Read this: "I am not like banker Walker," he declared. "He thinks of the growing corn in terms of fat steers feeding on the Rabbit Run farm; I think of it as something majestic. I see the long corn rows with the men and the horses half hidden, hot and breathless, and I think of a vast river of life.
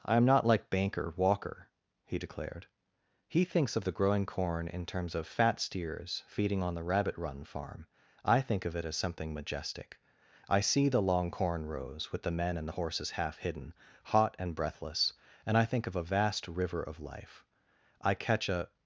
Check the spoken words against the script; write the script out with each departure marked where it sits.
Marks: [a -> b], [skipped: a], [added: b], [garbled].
"I am not like banker Walker," he declared. "He thinks of the growing corn in terms of fat steers feeding on the Rabbit Run farm; I think of it as something majestic. I see the long corn rows with the men and the horses half hidden, hot and breathless, and I think of a vast river of life. [added: I catch a]